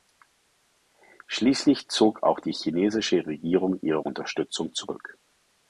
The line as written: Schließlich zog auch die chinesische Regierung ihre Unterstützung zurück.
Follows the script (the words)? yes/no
yes